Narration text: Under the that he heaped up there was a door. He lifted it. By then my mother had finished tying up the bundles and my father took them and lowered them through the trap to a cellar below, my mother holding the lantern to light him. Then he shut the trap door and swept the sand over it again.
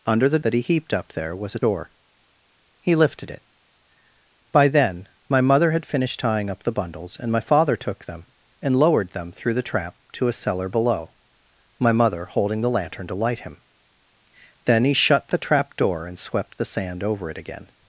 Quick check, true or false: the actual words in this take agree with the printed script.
true